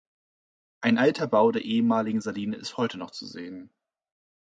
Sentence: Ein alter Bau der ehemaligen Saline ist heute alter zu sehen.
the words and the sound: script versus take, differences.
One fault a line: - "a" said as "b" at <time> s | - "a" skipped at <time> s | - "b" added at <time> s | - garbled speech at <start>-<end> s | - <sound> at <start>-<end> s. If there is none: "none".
- "alter" said as "noch" at 3.0 s